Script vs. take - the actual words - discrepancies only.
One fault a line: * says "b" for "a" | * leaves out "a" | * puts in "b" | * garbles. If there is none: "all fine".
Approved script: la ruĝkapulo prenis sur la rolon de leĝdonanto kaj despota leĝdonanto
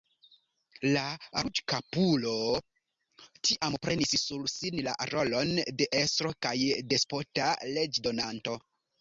* puts in "tiam"
* puts in "sin"
* says "estro" for "leĝdonanto"